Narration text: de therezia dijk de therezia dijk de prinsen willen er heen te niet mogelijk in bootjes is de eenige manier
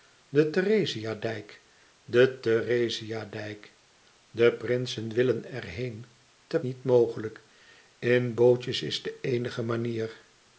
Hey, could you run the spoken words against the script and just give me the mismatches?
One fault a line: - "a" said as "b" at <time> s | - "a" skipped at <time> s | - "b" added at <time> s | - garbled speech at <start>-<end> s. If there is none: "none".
none